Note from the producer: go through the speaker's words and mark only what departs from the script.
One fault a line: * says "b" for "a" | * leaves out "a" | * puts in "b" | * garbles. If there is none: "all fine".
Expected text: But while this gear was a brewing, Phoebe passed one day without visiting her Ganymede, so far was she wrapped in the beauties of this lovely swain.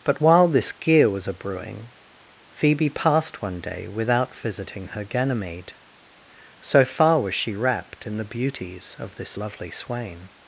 all fine